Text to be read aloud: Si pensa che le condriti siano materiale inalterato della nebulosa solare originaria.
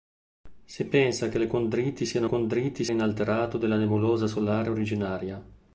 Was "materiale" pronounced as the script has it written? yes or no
no